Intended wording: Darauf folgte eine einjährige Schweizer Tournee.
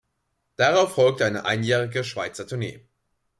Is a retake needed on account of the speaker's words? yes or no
no